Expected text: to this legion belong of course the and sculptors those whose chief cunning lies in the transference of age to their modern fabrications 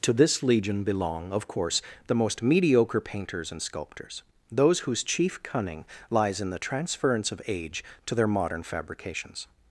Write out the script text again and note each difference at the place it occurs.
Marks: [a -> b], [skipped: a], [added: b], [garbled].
to this legion belong of course the [added: most mediocre painters] and sculptors those whose chief cunning lies in the transference of age to their modern fabrications